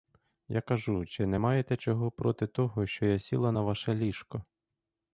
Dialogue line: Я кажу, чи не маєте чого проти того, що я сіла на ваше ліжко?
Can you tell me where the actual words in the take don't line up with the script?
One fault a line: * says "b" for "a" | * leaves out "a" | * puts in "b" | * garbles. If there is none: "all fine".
all fine